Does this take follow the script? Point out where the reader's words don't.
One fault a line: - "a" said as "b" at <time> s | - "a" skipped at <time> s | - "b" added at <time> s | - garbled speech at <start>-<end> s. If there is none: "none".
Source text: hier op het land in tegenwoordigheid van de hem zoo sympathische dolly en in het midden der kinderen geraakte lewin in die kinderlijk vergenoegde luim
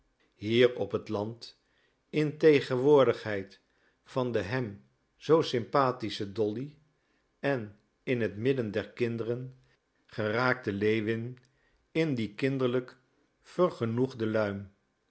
none